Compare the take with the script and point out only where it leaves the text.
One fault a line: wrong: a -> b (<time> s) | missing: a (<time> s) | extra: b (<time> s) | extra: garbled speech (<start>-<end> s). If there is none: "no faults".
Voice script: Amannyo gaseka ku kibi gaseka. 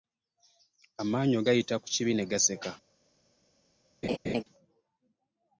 wrong: gaseka -> gayita (1.5 s)
extra: ne (2.2 s)